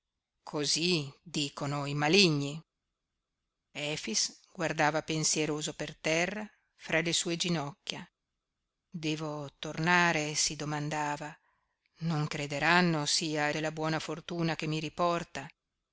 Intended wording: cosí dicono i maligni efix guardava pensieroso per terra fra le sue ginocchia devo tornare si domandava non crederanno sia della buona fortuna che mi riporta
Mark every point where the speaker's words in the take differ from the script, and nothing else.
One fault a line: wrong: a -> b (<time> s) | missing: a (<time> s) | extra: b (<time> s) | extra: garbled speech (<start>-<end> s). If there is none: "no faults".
no faults